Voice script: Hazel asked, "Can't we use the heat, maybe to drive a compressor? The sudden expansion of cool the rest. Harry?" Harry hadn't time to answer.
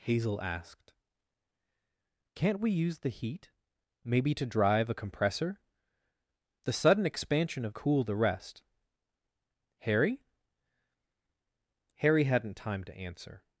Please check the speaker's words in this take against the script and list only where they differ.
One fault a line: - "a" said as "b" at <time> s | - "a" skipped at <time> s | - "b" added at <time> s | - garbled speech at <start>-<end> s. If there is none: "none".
none